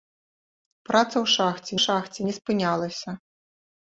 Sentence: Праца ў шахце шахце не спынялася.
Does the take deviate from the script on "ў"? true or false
false